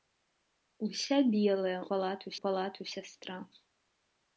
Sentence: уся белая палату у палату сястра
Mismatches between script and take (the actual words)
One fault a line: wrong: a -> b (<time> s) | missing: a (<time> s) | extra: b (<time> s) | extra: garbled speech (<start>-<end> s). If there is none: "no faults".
no faults